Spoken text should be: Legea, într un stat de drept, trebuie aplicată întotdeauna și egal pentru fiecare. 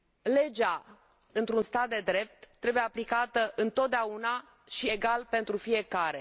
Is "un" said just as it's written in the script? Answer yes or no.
yes